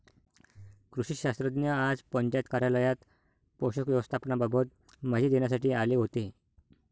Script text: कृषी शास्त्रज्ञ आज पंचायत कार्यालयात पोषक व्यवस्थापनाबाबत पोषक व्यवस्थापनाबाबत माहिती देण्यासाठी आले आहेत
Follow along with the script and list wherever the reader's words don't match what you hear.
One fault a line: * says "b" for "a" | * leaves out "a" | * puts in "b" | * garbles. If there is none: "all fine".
* leaves out "पोषक व्यवस्थापनाबाबत"
* says "होते" for "आहेत"